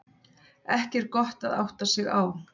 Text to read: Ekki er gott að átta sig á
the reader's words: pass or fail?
pass